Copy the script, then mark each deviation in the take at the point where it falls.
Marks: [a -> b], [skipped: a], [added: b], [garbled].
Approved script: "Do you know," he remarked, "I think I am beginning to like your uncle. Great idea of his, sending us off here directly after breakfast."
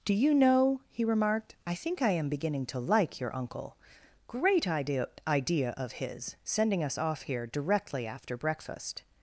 "Do you know," he remarked, "I think I am beginning to like your uncle. Great idea [added: idea] of his, sending us off here directly after breakfast."